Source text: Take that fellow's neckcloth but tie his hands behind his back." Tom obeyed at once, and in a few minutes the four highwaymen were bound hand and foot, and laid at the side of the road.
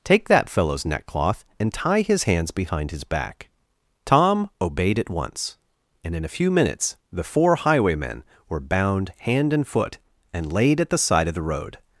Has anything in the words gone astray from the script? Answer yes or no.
yes